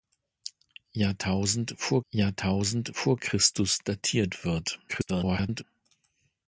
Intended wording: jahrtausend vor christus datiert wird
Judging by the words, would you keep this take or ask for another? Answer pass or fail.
fail